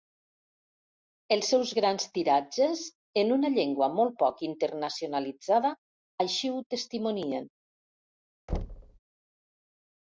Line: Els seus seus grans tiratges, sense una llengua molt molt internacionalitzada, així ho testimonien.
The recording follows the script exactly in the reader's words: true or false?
false